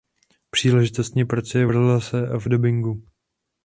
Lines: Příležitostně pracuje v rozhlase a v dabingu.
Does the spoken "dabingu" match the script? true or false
true